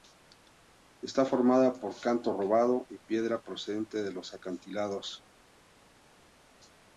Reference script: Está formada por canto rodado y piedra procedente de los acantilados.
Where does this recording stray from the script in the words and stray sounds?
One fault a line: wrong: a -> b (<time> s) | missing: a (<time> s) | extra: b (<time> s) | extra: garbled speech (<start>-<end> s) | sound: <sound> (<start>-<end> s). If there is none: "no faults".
no faults